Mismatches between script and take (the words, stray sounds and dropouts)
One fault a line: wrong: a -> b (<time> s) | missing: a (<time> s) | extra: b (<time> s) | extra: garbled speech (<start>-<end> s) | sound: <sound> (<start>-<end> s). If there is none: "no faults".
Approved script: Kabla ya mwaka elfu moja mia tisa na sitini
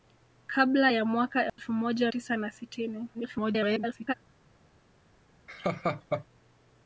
sound: dropout (1.5-1.6 s)
missing: mia (2.1 s)
extra: garbled speech (3.1-4.1 s)
sound: laugh (5.5-6.3 s)